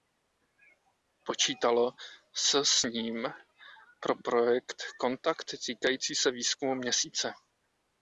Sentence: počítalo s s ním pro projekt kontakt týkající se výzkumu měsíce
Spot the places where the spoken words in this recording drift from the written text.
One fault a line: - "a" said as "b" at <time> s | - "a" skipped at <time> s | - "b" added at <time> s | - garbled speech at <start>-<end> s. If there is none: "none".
none